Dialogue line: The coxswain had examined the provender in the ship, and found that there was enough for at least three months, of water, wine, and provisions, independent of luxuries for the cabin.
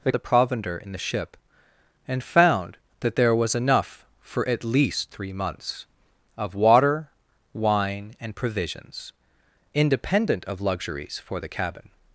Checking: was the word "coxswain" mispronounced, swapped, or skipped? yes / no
yes